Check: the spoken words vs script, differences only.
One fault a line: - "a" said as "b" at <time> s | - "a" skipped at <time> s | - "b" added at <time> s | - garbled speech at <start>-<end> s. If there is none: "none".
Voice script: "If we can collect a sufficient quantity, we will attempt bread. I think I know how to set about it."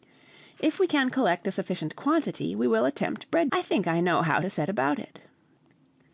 none